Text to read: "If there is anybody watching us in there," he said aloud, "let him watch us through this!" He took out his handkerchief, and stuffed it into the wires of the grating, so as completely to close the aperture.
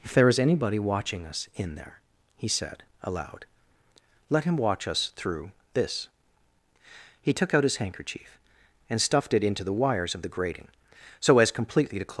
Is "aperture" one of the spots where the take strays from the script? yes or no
yes